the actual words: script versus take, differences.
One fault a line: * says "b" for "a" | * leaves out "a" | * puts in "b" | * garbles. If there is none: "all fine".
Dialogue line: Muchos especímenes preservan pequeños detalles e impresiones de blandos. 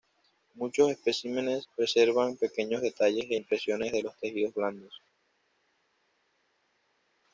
* puts in "los tejidos"